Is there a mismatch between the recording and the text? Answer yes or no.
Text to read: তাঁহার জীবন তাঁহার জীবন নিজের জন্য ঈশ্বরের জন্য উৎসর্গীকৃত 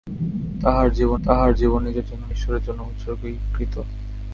no